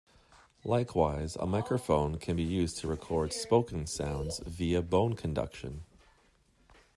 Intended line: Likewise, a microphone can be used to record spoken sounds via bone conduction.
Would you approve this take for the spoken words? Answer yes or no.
yes